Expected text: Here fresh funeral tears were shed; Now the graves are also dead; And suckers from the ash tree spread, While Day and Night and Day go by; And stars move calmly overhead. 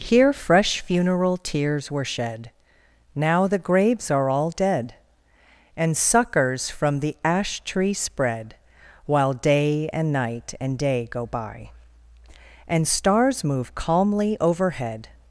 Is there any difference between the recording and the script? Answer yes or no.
yes